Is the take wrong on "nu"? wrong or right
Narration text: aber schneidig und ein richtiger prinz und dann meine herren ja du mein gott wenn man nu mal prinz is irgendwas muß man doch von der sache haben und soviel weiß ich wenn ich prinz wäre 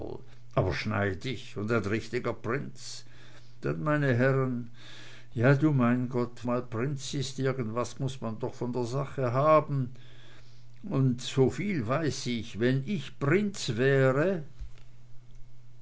wrong